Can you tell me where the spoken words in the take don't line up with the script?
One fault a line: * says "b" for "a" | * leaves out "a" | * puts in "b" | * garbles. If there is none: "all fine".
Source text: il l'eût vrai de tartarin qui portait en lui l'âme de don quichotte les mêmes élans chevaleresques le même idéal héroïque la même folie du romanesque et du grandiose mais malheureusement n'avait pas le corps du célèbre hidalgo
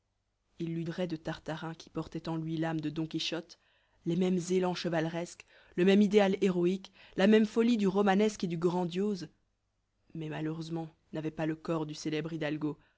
all fine